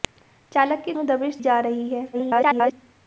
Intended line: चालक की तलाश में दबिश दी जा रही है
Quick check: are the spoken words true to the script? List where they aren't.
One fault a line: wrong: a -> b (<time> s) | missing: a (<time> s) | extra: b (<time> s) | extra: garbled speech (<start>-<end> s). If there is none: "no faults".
missing: तलाश (0.9 s)
missing: दी (1.4 s)
extra: garbled speech (2.1-2.7 s)